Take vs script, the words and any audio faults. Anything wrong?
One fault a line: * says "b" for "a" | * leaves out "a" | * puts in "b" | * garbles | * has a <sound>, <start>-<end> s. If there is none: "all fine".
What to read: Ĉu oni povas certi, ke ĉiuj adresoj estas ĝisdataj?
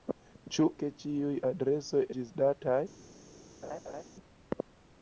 * leaves out "oni povas certi"
* leaves out "estas"
* has a laugh, 3.6-4.0 s